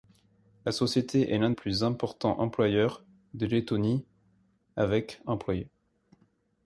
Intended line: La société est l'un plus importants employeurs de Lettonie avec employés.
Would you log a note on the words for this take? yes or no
no